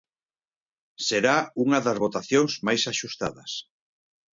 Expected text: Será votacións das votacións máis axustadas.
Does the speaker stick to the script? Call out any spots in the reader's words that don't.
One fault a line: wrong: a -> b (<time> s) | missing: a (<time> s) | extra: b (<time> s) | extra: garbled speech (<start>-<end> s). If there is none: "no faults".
wrong: votacións -> unha (1.6 s)